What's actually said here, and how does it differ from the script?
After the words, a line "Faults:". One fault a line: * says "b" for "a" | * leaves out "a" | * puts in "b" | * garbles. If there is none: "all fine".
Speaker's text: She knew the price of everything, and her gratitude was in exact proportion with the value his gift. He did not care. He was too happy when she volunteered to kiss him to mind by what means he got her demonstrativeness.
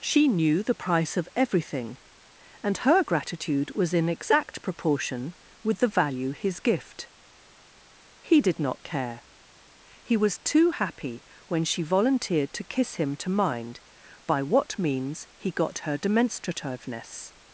She knew the price of everything, and her gratitude was in exact proportion with the value his gift. He did not care. He was too happy when she volunteered to kiss him to mind by what means he got her demonstrativeness.
Faults:
all fine